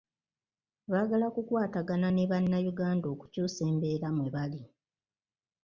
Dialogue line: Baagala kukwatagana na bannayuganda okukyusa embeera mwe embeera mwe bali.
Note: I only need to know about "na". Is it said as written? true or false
false